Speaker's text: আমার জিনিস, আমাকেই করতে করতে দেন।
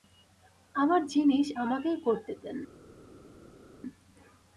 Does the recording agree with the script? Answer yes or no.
no